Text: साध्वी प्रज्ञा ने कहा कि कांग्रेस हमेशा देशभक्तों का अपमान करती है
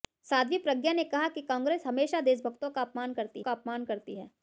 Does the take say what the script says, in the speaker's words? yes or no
no